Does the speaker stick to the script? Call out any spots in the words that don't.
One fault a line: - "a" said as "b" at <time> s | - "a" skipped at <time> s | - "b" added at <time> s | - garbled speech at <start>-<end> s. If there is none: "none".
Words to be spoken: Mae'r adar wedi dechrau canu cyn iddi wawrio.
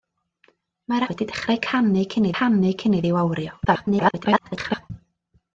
- "adar" skipped at 1.1 s
- "canu cyn" added at 2.4 s
- garbled speech at 3.6-4.9 s